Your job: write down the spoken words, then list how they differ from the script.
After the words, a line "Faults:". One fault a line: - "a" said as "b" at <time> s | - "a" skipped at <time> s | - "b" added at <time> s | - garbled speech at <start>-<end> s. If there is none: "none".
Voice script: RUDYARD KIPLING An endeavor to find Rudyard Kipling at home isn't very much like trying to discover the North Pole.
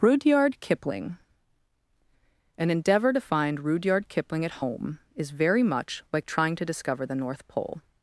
RUDYARD KIPLING An endeavor to find Rudyard Kipling at home is very much like trying to discover the North Pole.
Faults:
- "isn't" said as "is" at 5.2 s